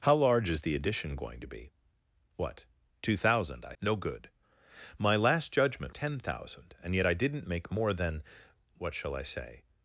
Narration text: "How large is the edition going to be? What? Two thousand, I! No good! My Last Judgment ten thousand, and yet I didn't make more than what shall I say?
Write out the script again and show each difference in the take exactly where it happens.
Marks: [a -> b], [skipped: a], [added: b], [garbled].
"How large is the edition going to be? What? Two thousand, I! No good! My Last Judgment ten thousand, and yet I didn't make more than what shall I say?